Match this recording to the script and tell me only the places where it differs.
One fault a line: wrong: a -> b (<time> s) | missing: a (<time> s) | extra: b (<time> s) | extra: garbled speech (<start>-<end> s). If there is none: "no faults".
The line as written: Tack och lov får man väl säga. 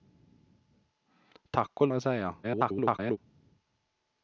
missing: lov får man (1.9 s)
extra: garbled speech (2.4-3.2 s)